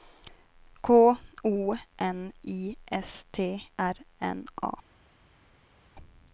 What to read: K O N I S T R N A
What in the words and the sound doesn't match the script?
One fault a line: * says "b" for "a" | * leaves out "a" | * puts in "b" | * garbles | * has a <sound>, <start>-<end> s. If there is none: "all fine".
all fine